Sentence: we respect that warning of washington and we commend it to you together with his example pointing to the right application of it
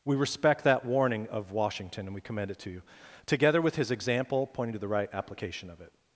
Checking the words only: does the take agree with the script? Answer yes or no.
yes